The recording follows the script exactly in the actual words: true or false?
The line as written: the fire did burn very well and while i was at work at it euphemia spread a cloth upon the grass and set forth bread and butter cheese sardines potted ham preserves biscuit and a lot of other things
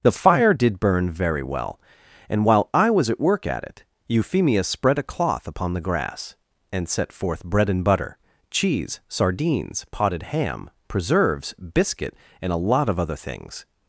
true